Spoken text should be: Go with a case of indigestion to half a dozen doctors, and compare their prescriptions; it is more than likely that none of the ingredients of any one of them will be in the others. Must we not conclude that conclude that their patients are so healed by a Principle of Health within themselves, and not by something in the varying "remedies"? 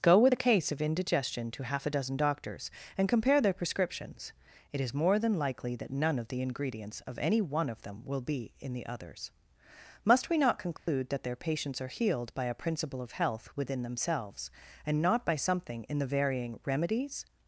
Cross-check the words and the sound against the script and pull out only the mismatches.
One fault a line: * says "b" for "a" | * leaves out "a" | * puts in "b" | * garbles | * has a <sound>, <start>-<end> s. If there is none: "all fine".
* has a dropout, 10.8-10.9 s
* leaves out "conclude that"
* leaves out "so"